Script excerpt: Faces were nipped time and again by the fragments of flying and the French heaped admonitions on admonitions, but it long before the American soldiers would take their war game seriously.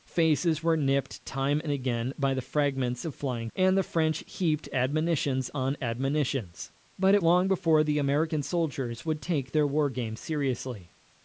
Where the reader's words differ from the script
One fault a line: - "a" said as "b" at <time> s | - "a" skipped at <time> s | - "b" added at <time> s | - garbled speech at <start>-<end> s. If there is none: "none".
none